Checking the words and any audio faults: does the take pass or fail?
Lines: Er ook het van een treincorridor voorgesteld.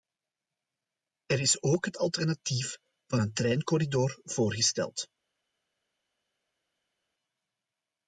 fail